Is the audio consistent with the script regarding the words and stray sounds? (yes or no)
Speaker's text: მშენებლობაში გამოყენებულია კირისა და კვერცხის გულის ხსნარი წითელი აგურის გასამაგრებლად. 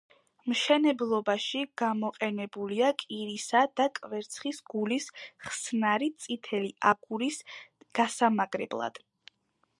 yes